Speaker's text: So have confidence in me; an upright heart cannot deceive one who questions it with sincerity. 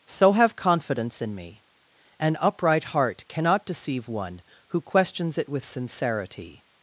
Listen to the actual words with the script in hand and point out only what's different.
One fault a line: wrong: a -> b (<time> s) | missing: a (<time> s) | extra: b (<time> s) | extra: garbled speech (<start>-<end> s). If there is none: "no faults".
no faults